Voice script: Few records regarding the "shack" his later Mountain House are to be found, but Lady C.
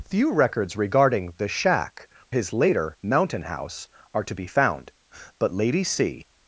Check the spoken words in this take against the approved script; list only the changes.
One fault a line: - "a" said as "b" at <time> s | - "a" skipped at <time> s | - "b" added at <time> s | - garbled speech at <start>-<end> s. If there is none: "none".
none